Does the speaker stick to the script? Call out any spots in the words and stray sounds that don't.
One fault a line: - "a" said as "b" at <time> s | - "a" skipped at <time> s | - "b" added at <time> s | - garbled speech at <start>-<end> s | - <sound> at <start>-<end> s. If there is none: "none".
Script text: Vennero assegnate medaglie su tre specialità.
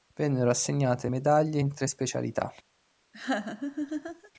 - "su" said as "in" at 1.6 s
- laugh at 3.1-4.3 s